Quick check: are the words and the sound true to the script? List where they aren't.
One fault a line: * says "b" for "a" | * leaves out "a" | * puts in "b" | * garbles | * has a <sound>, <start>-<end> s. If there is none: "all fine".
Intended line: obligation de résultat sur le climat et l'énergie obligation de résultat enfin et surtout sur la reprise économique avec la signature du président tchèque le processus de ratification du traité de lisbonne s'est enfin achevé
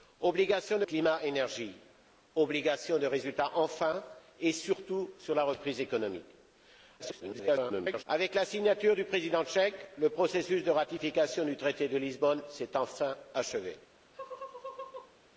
* leaves out "résultat sur le"
* garbles
* has a laugh, 14.1-15.1 s